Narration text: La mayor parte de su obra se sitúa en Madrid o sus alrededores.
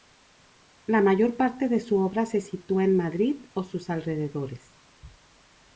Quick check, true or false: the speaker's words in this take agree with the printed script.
true